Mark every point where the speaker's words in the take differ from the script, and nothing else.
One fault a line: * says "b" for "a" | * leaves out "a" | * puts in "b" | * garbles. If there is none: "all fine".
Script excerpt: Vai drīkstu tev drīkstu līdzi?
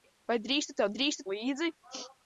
all fine